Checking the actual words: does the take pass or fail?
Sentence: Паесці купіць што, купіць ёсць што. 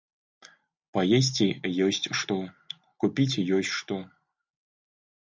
fail